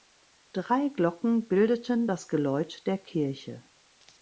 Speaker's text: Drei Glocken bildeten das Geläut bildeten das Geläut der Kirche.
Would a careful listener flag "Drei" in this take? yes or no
no